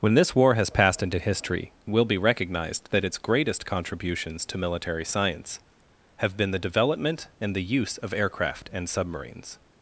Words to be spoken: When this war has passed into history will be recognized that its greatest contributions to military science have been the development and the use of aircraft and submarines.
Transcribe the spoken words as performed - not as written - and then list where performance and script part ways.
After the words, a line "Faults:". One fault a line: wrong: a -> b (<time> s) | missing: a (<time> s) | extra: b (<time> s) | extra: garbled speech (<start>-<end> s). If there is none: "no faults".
When this war has passed into history will be recognized that its greatest contributions to military science have been the development and the use of aircraft and submarines.
Faults:
no faults